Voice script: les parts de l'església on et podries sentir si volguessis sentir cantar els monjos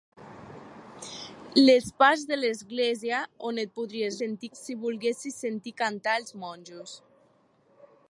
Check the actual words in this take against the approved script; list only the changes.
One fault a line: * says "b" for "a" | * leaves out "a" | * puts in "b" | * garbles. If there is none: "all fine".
all fine